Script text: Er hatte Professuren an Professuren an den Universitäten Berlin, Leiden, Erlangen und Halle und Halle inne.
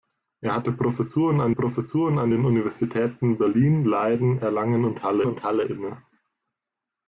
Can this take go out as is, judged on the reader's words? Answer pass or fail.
pass